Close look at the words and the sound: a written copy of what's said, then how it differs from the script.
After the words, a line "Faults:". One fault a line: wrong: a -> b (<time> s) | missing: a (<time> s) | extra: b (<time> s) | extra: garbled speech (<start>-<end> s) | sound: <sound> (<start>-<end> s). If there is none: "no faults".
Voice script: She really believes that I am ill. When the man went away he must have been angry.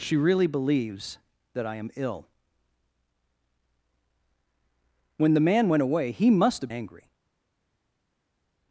She really believes that I am ill. When the man went away he must have angry.
Faults:
missing: been (6.7 s)